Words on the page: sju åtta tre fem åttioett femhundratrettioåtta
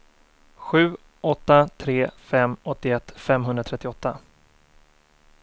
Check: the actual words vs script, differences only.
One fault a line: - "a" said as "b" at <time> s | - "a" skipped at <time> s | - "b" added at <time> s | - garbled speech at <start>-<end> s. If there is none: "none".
none